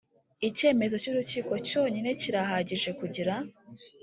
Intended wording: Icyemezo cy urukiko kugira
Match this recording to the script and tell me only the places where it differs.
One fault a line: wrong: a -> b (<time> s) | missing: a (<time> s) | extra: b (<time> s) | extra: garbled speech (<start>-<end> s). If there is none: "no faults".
extra: cyonyine kirahagije (1.7 s)